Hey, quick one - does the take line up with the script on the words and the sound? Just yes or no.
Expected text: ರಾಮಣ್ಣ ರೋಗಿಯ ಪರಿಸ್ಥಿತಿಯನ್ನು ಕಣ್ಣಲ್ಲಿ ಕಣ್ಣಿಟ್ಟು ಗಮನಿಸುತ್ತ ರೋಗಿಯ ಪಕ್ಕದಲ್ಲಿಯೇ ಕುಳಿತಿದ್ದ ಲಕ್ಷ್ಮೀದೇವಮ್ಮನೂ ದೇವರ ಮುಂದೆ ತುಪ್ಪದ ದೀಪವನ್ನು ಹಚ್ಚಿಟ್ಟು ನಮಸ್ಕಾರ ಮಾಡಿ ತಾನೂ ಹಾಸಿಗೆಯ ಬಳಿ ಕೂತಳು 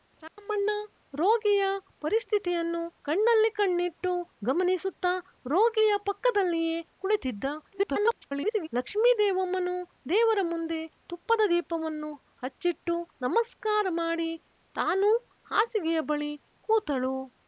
no